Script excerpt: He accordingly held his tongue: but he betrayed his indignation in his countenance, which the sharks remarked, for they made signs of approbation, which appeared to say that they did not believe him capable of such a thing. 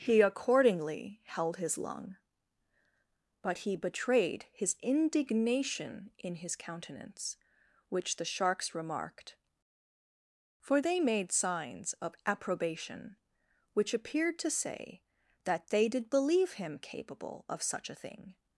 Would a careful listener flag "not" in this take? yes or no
yes